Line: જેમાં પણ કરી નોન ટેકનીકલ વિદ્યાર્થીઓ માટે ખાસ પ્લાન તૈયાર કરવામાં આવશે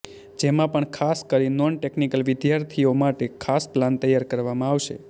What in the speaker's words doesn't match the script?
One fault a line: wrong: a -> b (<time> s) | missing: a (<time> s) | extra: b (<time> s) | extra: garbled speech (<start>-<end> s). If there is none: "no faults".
extra: ખાસ (0.9 s)